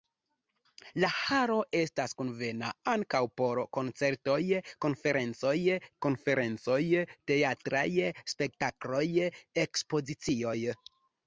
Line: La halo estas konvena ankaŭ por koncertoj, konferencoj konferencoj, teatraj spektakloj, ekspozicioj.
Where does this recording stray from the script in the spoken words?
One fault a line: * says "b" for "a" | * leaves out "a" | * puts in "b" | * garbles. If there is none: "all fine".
all fine